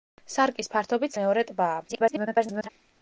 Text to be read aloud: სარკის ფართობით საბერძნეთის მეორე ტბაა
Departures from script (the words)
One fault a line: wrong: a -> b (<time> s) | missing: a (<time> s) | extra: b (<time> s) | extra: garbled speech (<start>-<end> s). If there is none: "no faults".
missing: საბერძნეთის (1.2 s)
extra: garbled speech (1.9-2.7 s)